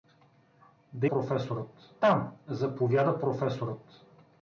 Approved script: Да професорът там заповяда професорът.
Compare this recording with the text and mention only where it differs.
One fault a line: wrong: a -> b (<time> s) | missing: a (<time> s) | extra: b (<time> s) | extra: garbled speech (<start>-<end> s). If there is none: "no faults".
no faults